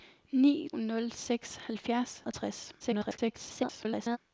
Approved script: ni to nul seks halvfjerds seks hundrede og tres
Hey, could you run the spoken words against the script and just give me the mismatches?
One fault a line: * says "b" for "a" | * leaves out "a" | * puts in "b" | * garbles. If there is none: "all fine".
* leaves out "to"
* leaves out "seks hundrede"
* garbles